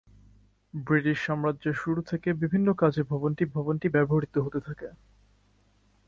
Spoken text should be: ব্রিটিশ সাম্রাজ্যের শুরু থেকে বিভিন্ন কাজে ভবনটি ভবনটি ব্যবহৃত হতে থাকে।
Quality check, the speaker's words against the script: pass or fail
pass